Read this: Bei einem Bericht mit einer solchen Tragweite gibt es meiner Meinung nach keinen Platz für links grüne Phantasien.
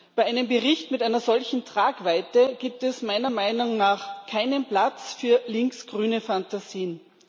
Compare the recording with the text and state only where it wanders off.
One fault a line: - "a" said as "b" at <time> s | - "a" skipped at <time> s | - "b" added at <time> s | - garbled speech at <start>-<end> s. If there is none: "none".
none